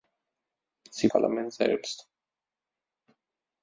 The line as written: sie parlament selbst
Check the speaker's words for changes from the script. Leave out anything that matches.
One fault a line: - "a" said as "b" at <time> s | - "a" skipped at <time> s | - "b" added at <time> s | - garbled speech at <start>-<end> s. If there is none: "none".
none